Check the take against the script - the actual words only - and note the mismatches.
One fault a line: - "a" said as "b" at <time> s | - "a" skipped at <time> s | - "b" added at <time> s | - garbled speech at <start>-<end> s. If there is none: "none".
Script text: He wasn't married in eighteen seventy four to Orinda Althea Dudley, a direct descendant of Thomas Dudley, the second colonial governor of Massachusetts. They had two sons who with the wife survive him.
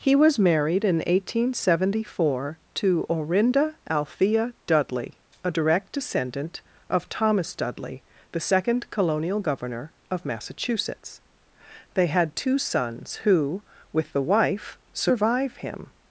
- "wasn't" said as "was" at 0.1 s